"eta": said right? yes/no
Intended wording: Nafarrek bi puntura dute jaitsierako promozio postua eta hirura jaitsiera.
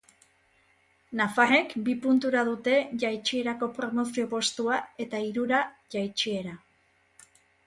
yes